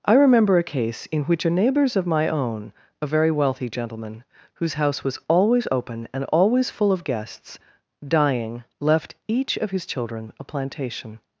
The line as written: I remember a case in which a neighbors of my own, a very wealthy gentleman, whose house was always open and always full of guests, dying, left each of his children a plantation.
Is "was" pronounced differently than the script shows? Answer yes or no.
no